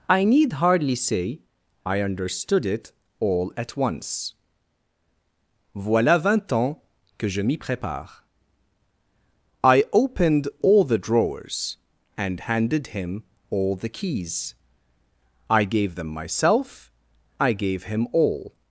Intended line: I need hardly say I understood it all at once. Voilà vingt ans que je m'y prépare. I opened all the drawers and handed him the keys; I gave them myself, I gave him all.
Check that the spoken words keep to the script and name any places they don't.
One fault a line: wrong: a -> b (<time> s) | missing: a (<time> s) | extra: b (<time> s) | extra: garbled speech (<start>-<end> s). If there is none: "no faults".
extra: all (13.5 s)